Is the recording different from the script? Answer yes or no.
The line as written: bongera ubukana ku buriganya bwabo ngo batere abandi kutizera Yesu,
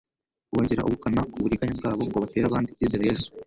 no